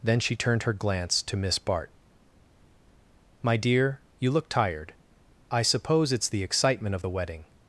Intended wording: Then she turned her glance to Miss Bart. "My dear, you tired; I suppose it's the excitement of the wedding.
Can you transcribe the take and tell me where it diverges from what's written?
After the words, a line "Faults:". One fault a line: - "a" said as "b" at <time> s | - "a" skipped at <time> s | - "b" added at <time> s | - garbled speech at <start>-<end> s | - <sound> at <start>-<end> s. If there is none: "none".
Then she turned her glance to Miss Bart. "My dear, you look tired; I suppose it's the excitement of the wedding.
Faults:
- "look" added at 4.3 s